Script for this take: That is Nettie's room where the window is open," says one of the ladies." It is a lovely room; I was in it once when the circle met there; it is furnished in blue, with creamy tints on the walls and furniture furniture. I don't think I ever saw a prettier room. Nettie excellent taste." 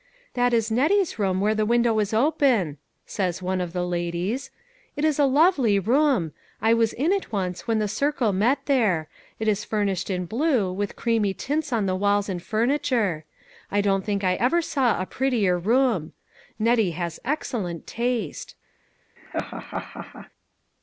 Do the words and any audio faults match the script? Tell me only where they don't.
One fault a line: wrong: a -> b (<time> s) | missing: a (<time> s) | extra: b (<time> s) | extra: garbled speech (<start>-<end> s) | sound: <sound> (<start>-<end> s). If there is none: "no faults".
missing: furniture (13.2 s)
extra: has (16.9 s)
sound: laugh (19.2-20.3 s)